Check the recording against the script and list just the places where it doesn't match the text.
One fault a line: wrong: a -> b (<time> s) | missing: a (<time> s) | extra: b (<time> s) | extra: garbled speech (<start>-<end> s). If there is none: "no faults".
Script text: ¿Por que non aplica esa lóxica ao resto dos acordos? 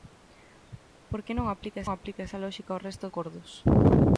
extra: aplica (1.9 s)
missing: dos (3.1 s)